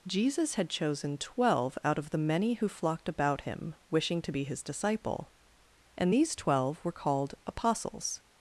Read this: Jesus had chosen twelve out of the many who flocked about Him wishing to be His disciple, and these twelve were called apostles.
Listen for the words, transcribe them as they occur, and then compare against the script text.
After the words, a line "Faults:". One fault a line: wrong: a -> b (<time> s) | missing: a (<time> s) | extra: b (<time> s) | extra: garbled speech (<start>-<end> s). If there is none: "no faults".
Jesus had chosen twelve out of the many who flocked about Him wishing to be His disciple, and these twelve were called apostles.
Faults:
no faults